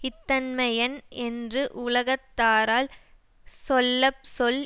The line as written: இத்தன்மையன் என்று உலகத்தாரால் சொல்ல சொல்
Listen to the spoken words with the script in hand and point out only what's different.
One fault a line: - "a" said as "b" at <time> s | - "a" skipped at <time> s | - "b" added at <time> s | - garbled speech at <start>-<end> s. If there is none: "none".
none